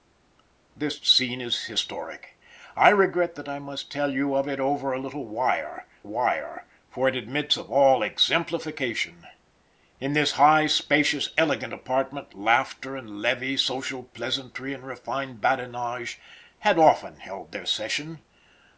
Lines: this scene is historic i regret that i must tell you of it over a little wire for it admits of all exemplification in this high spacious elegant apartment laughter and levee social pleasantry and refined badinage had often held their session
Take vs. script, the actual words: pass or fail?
fail